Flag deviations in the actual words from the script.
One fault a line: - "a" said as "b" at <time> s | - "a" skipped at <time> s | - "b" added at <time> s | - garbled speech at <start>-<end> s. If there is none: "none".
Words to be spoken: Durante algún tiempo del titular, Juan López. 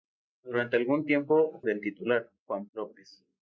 none